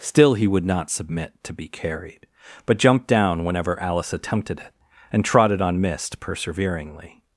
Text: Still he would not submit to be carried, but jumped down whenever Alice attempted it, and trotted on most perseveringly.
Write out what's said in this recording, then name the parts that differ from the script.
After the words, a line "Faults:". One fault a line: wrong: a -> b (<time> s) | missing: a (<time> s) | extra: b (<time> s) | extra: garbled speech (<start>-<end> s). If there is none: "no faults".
Still he would not submit to be carried, but jumped down whenever Alice attempted it, and trotted on mist perseveringly.
Faults:
wrong: most -> mist (5.8 s)